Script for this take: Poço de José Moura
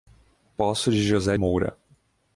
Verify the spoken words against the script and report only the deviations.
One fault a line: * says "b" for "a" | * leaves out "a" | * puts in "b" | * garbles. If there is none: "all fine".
all fine